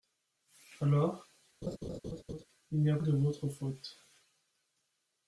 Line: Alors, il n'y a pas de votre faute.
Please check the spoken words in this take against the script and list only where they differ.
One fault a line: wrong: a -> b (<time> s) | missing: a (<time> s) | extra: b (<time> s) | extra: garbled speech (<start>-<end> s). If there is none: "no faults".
missing: pas (3.0 s)